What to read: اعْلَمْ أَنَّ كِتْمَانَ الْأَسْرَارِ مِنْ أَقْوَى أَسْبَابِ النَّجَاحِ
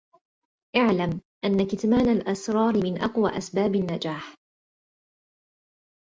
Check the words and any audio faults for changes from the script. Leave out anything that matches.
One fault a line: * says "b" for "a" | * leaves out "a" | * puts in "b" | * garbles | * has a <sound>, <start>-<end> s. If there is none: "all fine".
all fine